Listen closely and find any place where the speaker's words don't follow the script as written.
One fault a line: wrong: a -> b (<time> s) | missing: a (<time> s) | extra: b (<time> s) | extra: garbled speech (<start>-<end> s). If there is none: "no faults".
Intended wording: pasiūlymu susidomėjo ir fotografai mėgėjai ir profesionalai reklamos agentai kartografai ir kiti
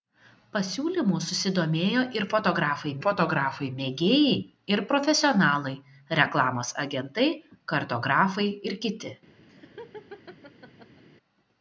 extra: fotografai (3.0 s)